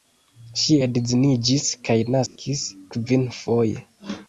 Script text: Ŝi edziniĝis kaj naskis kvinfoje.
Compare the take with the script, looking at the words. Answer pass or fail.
pass